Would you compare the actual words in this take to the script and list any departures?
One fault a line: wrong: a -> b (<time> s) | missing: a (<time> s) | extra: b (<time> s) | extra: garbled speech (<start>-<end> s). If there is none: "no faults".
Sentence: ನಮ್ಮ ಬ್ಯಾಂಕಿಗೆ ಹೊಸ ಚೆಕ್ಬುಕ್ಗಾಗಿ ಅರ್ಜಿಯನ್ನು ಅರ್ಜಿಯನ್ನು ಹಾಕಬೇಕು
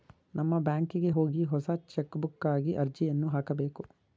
extra: ಹೋಗಿ (1.1 s)
missing: ಅರ್ಜಿಯನ್ನು (3.3 s)